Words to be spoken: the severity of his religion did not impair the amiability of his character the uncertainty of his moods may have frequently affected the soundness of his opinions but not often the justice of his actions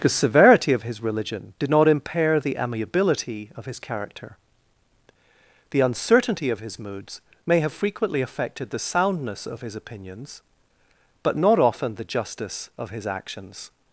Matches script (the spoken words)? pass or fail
pass